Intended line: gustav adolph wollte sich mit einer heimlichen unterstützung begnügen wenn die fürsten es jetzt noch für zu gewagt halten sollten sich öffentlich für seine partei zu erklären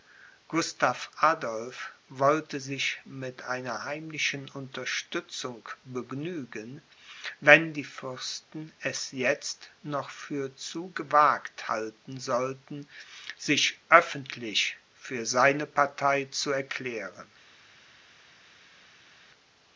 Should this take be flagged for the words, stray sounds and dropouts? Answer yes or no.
no